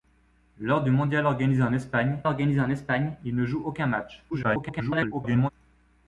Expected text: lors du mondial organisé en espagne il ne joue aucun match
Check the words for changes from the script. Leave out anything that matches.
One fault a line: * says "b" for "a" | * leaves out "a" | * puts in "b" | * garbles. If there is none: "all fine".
* puts in "organisé en espagne"
* garbles